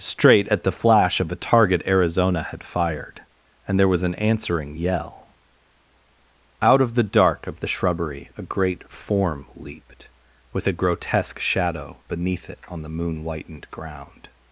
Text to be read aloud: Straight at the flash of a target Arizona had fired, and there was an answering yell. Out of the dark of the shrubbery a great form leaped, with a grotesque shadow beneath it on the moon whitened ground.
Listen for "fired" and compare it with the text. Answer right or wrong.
right